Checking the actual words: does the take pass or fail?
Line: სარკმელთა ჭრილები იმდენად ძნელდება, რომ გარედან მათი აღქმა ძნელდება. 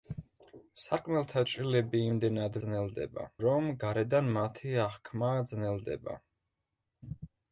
pass